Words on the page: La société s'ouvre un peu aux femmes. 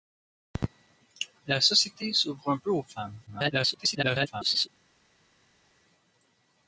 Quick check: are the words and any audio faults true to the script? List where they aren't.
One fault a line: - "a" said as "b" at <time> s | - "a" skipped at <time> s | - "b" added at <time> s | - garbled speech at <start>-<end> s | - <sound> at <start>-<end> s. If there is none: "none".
- garbled speech at 3.3-4.7 s